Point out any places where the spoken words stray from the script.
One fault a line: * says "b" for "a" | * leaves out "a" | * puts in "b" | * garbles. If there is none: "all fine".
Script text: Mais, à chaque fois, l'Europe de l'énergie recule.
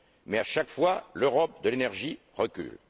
all fine